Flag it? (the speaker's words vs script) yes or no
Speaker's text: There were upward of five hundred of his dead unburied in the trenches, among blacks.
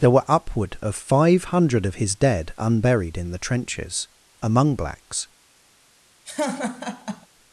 no